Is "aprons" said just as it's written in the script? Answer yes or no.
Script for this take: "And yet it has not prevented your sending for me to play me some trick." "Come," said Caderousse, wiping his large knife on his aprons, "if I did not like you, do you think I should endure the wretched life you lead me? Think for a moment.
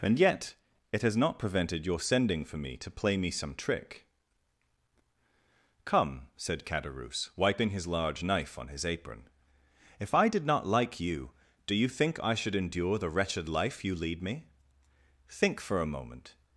no